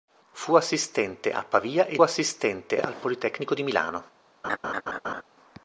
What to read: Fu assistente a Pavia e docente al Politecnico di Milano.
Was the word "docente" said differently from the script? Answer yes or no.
yes